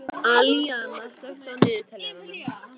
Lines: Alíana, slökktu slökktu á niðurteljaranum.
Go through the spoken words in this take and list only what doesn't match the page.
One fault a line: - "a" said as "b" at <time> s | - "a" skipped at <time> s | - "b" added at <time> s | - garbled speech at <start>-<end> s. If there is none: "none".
- "slökktu" skipped at 1.5 s